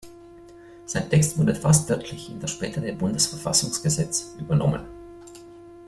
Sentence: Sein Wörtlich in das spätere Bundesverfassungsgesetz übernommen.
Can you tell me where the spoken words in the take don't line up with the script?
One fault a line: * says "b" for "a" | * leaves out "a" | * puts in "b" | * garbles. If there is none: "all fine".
* puts in "Text wurde fast"